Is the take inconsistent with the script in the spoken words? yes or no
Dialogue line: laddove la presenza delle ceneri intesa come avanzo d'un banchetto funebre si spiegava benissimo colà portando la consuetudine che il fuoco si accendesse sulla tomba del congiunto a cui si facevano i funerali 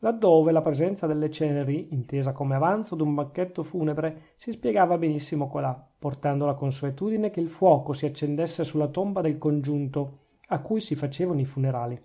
no